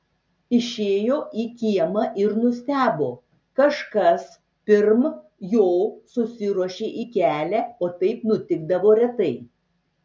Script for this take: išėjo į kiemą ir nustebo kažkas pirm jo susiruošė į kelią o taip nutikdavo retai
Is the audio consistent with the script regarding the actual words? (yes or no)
yes